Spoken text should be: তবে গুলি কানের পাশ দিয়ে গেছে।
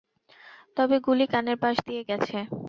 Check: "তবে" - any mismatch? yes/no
no